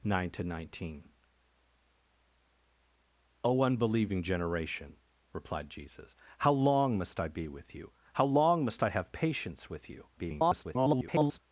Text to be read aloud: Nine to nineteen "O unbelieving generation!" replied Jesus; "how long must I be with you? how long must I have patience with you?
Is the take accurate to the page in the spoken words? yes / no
no